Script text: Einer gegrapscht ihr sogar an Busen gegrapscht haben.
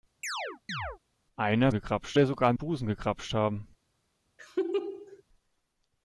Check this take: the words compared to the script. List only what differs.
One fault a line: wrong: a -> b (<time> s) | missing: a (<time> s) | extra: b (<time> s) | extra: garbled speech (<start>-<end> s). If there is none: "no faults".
no faults